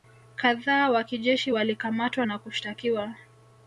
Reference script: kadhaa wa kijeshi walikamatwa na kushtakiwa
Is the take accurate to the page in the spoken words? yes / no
yes